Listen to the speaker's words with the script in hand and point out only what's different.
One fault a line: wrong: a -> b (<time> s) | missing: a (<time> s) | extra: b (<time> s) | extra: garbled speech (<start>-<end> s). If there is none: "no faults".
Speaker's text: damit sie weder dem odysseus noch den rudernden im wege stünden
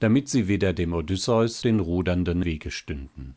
missing: noch (1.6 s)
missing: im (2.4 s)